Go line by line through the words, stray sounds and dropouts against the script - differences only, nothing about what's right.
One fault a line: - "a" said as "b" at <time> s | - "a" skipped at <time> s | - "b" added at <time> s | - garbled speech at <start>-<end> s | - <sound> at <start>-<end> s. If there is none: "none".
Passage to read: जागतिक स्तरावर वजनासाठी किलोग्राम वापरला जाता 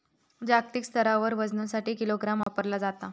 - dropout at 2.4-2.5 s